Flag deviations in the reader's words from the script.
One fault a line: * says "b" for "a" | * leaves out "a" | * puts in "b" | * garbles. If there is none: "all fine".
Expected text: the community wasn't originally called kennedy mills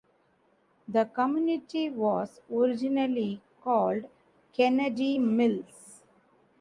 * says "was" for "wasn't"